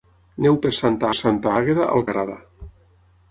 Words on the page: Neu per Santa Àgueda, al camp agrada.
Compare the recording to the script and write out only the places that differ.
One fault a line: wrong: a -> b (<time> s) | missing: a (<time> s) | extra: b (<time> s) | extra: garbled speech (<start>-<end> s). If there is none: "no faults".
extra: Santa (1.2 s)
missing: camp (2.1 s)